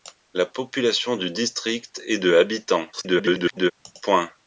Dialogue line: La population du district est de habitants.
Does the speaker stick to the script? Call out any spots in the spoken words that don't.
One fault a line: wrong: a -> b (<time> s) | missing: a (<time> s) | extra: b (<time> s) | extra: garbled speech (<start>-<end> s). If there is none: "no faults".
extra: garbled speech (2.9-3.7 s)